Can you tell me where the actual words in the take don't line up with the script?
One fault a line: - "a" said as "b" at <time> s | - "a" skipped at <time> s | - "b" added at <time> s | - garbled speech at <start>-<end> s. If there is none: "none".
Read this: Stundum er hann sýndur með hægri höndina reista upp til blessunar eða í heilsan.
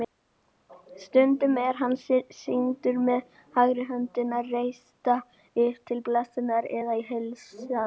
none